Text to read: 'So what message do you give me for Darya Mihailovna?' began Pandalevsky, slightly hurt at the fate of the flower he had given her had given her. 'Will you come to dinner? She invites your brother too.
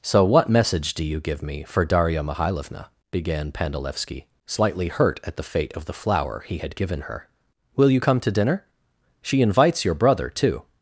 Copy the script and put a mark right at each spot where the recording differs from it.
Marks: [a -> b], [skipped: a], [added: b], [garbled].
'So what message do you give me for Darya Mihailovna?' began Pandalevsky, slightly hurt at the fate of the flower he had given her [skipped: had given her.] 'Will you come to dinner? She invites your brother too.